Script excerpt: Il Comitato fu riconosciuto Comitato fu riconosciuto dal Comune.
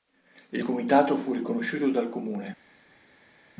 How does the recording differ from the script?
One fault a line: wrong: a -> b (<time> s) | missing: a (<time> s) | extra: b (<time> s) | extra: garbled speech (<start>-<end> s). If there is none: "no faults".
missing: Comitato fu riconosciuto (1.9 s)